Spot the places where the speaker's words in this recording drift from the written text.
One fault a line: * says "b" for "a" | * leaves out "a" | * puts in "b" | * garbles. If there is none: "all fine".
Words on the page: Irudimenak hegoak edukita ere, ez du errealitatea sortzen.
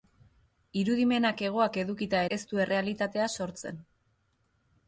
* leaves out "ere"